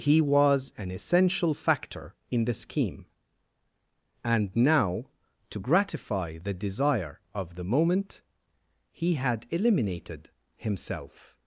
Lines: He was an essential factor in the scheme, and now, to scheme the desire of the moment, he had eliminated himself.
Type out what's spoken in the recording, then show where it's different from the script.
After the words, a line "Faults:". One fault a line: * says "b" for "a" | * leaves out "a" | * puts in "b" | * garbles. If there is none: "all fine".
He was an essential factor in the scheme, and now, to gratify the desire of the moment, he had eliminated himself.
Faults:
* says "gratify" for "scheme"